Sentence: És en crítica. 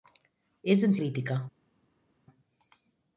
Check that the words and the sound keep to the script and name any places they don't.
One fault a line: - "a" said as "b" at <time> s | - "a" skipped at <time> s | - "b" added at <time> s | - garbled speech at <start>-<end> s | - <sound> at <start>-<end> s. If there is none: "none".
none